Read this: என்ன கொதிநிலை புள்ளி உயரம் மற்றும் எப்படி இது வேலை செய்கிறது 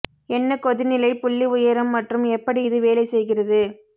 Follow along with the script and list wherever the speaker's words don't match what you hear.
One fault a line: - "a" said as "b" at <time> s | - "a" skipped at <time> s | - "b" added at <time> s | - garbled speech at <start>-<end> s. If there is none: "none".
none